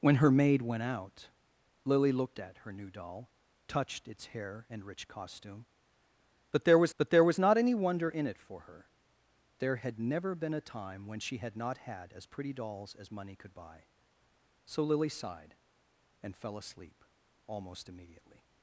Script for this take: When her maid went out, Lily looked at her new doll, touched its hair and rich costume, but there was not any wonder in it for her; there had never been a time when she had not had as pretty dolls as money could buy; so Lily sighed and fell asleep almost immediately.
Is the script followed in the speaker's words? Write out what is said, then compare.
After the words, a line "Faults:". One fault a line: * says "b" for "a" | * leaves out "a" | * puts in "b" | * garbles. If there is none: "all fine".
When her maid went out, Lily looked at her new doll, touched its hair and rich costume, but there was but there was not any wonder in it for her; there had never been a time when she had not had as pretty dolls as money could buy; so Lily sighed and fell asleep almost immediately.
Faults:
* puts in "but there was"